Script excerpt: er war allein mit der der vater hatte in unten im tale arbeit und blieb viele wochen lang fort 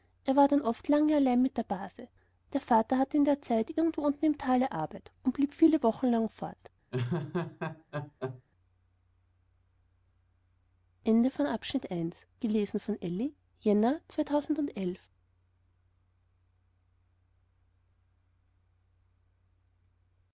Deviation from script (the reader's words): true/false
true